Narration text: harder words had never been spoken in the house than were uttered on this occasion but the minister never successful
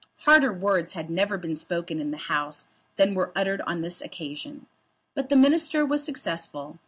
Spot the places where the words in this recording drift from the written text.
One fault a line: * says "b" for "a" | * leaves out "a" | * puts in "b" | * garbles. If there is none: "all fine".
* says "was" for "never"